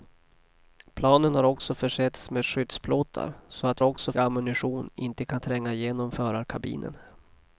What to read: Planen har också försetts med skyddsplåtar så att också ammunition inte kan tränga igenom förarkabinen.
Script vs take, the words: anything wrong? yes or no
no